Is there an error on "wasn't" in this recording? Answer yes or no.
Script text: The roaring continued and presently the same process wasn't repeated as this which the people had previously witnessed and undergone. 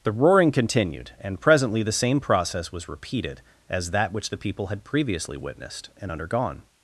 yes